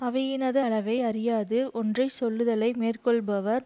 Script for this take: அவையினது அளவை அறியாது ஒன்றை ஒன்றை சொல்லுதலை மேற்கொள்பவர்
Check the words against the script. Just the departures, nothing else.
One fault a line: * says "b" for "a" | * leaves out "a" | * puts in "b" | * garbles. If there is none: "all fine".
* leaves out "ஒன்றை"